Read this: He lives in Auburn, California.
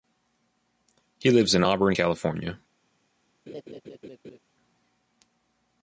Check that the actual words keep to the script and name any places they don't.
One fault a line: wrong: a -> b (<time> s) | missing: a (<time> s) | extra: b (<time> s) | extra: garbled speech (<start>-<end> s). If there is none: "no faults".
no faults